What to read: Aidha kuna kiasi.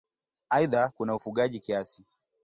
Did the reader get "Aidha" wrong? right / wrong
right